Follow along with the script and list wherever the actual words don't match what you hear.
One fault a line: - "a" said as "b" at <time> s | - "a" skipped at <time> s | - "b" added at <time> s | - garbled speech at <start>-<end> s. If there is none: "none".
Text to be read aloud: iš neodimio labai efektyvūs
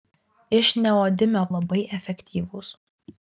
none